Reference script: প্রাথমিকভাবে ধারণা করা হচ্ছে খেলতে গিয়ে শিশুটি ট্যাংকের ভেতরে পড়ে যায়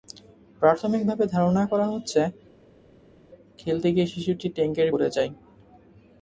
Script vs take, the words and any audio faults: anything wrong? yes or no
yes